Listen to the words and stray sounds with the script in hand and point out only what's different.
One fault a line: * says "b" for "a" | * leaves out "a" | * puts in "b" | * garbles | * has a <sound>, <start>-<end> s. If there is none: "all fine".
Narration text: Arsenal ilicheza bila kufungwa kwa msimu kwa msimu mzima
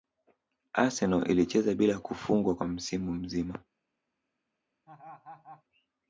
* leaves out "kwa msimu"
* has a laugh, 4.9-5.6 s